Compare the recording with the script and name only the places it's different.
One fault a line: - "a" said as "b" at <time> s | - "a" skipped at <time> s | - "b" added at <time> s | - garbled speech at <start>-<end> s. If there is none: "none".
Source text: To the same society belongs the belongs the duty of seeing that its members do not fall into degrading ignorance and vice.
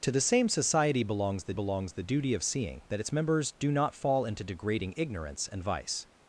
none